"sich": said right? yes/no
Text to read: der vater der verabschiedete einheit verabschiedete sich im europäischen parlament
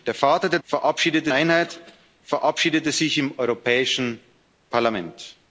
yes